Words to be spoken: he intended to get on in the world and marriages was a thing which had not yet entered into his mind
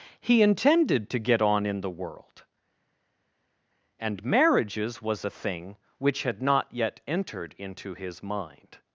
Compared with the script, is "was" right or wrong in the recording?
right